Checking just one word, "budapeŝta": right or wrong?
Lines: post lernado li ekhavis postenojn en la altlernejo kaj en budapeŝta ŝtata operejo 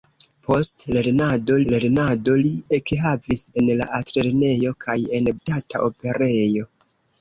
wrong